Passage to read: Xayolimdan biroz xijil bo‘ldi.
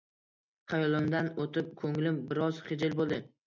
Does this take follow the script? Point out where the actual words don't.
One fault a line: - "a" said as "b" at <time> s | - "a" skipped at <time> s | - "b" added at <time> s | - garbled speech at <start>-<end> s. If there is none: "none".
- "o‘tib ko‘nglim" added at 1.4 s